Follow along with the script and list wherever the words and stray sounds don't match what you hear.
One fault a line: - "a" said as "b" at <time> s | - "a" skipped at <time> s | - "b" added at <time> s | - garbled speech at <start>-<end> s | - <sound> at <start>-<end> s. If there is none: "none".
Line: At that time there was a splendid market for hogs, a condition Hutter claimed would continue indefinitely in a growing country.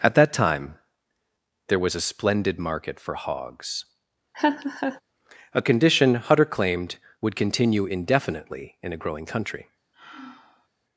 - laugh at 4.3-5.0 s
- sigh at 9.9-10.7 s